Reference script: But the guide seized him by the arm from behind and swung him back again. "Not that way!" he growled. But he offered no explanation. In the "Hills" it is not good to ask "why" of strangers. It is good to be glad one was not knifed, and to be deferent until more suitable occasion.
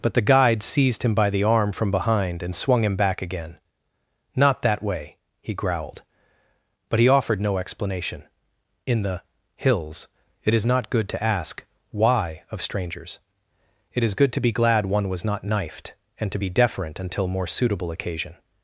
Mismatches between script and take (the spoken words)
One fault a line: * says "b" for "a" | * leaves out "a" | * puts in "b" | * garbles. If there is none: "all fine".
all fine